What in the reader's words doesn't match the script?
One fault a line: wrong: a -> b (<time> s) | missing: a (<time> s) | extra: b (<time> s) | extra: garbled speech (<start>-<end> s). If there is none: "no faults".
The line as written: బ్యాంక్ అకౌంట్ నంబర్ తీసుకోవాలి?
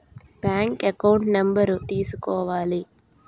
no faults